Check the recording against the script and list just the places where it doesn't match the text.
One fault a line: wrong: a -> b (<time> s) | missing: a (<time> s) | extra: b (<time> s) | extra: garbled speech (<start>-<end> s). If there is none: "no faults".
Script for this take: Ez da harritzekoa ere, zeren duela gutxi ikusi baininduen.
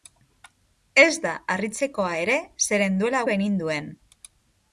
missing: gutxi ikusi (3.2 s)